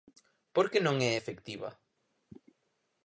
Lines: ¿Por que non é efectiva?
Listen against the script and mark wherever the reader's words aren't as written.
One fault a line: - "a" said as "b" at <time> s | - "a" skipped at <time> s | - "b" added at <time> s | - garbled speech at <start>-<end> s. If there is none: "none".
none